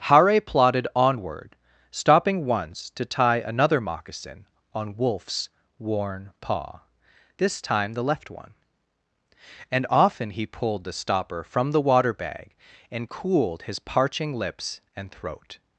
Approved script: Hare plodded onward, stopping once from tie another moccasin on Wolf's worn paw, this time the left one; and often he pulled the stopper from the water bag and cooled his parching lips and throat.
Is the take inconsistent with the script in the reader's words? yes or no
yes